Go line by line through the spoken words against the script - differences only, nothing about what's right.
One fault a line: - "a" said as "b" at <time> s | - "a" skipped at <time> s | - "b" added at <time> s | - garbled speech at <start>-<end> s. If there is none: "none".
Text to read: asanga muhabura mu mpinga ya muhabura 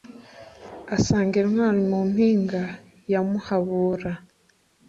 - "muhabura" said as "intwari" at 1.4 s